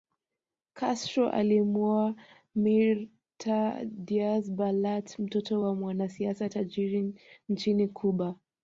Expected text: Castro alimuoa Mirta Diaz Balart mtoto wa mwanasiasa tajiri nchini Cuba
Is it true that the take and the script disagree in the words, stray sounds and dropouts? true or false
false